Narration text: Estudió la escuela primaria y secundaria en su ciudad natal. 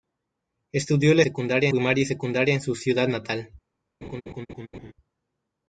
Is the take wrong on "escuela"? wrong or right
wrong